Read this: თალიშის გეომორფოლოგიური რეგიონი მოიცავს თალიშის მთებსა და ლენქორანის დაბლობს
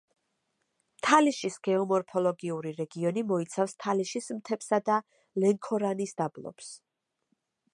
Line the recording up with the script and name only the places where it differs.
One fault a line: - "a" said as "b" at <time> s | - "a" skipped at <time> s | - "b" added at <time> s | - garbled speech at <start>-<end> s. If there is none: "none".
none